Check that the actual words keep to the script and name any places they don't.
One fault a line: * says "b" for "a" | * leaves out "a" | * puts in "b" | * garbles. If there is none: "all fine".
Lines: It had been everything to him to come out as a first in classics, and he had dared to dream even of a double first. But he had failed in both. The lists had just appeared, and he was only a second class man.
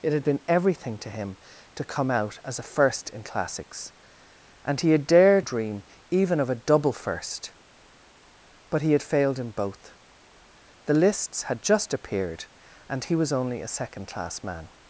* leaves out "to"